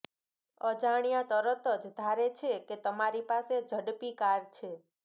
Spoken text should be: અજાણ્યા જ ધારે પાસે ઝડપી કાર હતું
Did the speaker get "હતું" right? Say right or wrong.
wrong